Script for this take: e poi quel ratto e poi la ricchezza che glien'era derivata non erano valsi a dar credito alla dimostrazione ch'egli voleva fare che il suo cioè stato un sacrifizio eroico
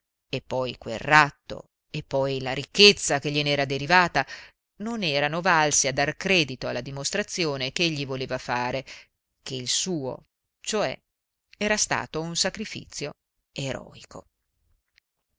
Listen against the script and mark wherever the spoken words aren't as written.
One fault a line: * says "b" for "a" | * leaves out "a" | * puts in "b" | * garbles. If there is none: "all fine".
* puts in "era"